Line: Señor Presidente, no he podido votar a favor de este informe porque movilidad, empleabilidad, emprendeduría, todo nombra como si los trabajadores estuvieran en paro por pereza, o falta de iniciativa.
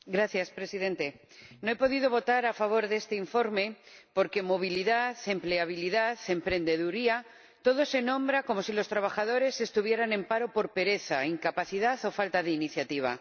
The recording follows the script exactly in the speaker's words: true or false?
false